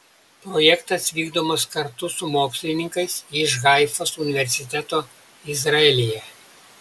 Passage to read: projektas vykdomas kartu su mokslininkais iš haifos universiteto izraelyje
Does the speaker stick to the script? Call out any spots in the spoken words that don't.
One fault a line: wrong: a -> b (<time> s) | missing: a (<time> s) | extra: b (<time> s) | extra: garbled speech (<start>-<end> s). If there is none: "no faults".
no faults